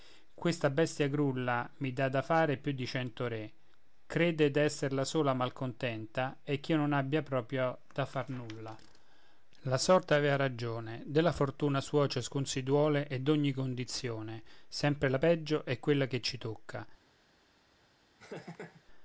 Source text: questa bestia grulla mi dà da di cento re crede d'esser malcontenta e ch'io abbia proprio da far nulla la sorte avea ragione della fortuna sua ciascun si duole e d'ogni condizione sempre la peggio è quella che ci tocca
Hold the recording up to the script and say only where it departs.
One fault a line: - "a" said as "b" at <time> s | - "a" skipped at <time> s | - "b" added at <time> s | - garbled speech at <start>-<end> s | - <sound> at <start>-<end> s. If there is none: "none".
- "fare più" added at 2.2 s
- "la sola" added at 4.9 s
- "non" added at 6.8 s
- laugh at 18.2-18.8 s